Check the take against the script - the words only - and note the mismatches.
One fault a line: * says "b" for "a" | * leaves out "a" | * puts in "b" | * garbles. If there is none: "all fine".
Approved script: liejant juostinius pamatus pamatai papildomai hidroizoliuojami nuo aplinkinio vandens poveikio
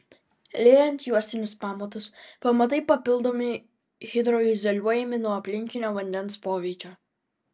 all fine